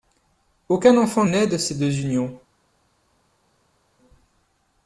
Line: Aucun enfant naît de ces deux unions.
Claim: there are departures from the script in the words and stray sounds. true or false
false